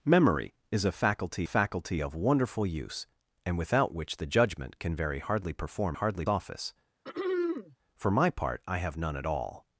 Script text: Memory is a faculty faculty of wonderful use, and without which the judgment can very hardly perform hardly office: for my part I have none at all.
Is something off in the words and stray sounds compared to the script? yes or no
yes